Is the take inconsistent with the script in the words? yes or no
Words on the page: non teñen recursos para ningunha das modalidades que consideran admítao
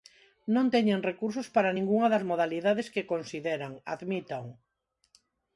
no